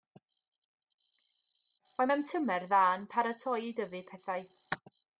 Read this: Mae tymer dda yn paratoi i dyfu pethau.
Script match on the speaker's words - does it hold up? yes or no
no